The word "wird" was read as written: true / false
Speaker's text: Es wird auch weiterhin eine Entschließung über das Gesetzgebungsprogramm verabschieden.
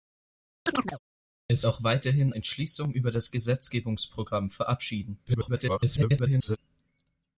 false